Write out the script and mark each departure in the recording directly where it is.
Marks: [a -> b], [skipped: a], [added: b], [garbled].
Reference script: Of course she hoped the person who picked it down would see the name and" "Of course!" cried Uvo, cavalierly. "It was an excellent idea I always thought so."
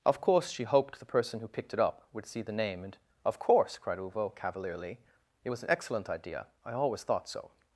Of course she hoped the person who picked it [down -> up] would see the name and" "Of course!" cried Uvo, cavalierly. "It was an excellent idea I always thought so."